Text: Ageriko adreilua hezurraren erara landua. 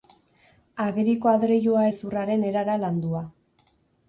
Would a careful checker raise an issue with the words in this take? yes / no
no